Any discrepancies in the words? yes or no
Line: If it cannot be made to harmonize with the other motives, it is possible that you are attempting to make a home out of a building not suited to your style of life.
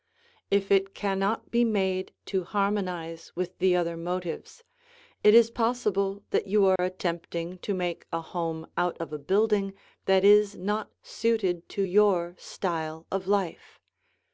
yes